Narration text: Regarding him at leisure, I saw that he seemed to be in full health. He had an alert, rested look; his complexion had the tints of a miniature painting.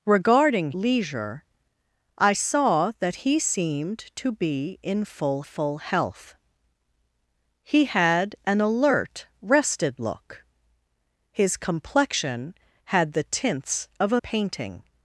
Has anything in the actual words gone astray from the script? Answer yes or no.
yes